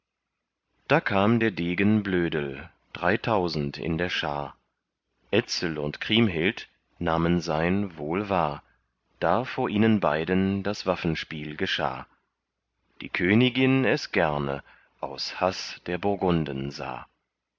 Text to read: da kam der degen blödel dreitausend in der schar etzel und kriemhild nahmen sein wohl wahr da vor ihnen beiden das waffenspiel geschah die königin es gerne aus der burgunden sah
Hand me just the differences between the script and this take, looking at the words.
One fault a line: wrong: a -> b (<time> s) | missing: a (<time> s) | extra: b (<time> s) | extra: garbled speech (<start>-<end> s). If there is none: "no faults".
extra: haß (15.4 s)